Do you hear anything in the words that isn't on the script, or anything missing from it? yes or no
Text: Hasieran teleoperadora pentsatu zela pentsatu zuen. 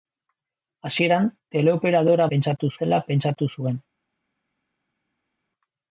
no